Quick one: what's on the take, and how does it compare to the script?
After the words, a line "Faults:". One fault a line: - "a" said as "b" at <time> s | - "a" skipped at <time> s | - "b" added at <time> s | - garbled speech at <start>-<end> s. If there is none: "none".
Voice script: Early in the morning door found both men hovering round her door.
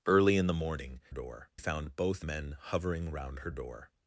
Early in the morning door found both men hovering round her door.
Faults:
none